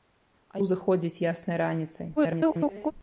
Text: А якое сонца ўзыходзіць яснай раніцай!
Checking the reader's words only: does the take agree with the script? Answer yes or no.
no